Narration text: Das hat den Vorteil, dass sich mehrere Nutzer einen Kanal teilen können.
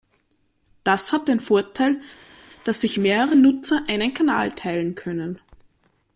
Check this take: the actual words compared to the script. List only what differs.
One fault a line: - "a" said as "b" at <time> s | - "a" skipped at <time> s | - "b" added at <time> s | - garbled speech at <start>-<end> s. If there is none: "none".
none